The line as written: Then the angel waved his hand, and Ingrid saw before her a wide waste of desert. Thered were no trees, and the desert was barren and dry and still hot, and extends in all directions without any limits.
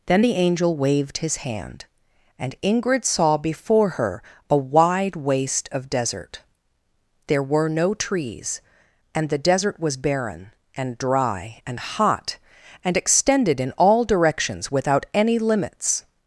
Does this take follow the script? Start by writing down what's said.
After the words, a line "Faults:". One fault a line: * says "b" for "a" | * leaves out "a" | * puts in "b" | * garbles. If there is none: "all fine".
Then the angel waved his hand, and Ingrid saw before her a wide waste of desert. There were no trees, and the desert was barren and dry and hot, and extended in all directions without any limits.
Faults:
* says "There" for "Thered"
* leaves out "still"
* says "extended" for "extends"